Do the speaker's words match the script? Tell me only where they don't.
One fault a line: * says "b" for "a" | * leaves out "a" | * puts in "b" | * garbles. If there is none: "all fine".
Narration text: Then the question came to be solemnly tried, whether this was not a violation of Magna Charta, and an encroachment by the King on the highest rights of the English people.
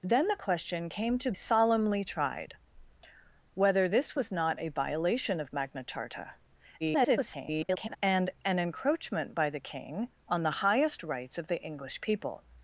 * leaves out "be"
* garbles